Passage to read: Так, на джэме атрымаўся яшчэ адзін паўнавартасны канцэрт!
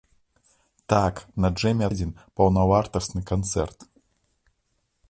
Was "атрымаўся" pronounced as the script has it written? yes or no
no